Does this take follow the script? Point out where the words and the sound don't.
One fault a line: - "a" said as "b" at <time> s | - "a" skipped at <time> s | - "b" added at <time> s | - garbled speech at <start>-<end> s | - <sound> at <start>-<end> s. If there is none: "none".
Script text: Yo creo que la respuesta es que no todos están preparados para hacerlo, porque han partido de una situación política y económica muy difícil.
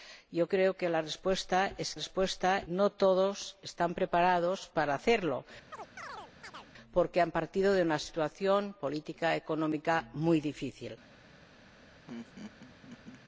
- "que" said as "respuesta" at 1.9 s
- chirp at 5.7-6.7 s
- laugh at 12.1-13.2 s